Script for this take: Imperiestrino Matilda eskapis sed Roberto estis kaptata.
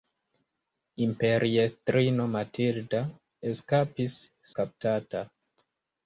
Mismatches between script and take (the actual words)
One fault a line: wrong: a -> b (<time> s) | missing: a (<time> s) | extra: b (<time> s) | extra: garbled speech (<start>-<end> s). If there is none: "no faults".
missing: sed Roberto estis (4.2 s)